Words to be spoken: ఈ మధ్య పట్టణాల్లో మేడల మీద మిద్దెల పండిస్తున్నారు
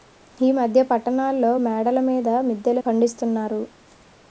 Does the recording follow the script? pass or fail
pass